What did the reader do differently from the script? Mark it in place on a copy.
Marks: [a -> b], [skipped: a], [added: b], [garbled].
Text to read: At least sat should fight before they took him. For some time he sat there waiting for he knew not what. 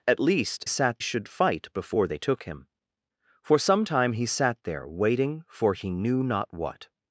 At least sat should fight before they took him. For some time he sat there waiting for he knew not what.